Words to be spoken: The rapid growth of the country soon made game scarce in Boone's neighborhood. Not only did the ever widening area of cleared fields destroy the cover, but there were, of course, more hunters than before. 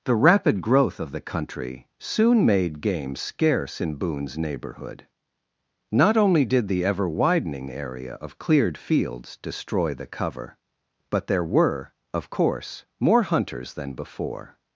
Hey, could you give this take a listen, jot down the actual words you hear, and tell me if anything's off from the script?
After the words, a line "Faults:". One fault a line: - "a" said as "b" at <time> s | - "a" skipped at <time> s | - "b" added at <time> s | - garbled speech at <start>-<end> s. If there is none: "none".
The rapid growth of the country soon made game scarce in Boone's neighborhood. Not only did the ever widening area of cleared fields destroy the cover, but there were, of course, more hunters than before.
Faults:
none